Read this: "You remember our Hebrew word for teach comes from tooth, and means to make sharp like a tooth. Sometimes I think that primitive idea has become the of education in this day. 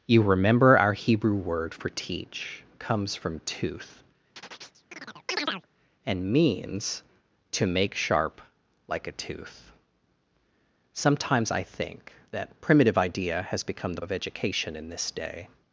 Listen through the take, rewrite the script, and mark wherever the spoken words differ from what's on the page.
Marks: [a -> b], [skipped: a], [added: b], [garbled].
"You remember our Hebrew word for teach comes from tooth, and means to make sharp like a tooth. Sometimes I think that primitive idea has become the of education in this day.